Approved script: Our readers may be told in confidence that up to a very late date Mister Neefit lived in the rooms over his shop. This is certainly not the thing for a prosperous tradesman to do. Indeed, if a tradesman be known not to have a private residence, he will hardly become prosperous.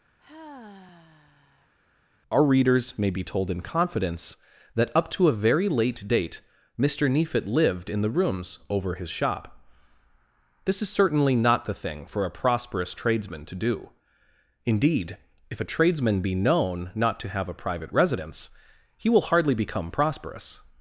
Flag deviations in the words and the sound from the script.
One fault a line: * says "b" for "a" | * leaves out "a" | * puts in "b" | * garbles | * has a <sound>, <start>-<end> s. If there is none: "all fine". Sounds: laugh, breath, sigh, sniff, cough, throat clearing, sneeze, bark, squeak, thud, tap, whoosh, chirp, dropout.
* has a sigh, 0.2-1.7 s